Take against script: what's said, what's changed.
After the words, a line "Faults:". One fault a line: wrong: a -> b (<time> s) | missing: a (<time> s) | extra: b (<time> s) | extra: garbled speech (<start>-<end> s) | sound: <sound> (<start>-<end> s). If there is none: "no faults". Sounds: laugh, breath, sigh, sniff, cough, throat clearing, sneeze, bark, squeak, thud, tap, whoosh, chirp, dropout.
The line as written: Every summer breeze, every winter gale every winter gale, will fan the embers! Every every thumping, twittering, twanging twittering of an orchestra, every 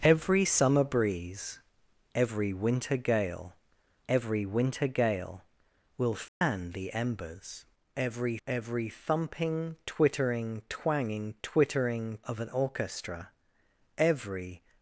Every summer breeze, every winter gale every winter gale, will fan the embers! Every every thumping, twittering, twanging twittering of an orchestra, every
Faults:
sound: dropout (6.3-6.4 s)